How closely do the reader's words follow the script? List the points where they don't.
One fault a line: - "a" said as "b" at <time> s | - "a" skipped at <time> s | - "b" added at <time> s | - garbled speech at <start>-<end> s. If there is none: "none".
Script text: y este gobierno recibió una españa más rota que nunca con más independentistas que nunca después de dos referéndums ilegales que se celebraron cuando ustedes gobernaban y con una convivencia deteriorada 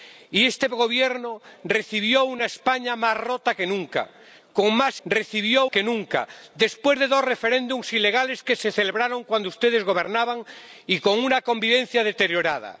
- "independentistas" said as "recibió" at 5.0 s